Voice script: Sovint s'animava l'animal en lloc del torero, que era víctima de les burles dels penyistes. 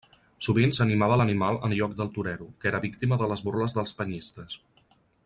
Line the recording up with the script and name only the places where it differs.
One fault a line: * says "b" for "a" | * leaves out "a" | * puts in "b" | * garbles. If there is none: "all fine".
all fine